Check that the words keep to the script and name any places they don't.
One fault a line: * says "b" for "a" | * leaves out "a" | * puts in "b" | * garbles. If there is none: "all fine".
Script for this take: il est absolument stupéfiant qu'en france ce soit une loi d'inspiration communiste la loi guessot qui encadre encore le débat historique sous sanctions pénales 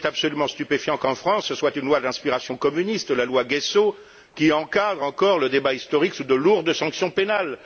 * puts in "de lourdes"